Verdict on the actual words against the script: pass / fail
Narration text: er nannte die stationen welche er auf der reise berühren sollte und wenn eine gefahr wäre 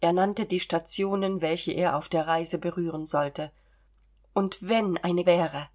fail